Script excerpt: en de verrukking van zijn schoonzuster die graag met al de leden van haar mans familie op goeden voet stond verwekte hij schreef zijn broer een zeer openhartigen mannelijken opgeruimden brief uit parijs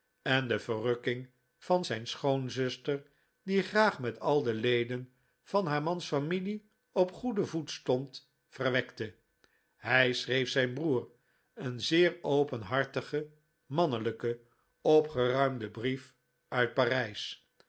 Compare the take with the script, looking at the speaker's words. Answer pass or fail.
pass